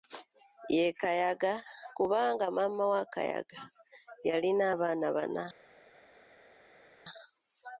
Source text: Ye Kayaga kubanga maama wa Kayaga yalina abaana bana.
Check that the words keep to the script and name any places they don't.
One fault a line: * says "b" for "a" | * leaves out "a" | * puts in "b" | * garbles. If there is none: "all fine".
all fine